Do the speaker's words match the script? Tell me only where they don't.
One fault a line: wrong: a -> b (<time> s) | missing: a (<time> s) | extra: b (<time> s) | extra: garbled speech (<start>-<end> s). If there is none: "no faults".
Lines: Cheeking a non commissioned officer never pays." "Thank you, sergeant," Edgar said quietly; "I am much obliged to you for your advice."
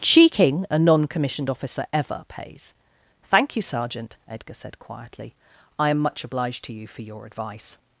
wrong: never -> ever (1.9 s)